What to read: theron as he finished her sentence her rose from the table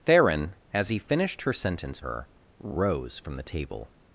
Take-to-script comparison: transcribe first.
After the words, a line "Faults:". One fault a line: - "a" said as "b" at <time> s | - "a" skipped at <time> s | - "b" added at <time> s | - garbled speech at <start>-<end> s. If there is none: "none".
theron as he finished her sentence her rose from the table
Faults:
none